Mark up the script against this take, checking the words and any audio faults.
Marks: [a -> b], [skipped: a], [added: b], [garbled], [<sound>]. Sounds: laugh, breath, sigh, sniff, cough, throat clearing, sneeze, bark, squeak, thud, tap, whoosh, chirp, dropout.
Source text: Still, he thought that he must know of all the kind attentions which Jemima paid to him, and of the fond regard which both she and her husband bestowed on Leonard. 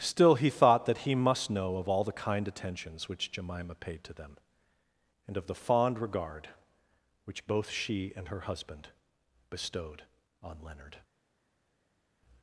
Still, he thought that he must know of all the kind attentions which Jemima paid to [him, -> them] and of the fond regard which both she and her husband bestowed on Leonard.